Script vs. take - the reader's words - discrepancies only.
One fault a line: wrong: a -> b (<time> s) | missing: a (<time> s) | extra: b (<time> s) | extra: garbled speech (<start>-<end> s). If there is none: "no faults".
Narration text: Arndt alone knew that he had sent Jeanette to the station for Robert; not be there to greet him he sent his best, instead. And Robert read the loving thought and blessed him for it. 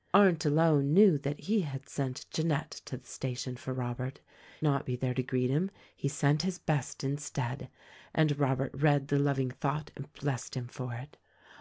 no faults